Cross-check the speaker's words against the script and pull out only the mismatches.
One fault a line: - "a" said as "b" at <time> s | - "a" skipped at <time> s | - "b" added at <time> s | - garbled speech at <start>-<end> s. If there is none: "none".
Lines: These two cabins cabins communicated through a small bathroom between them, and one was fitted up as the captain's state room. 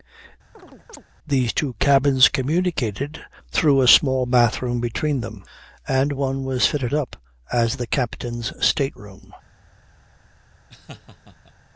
- "cabins" skipped at 2.3 s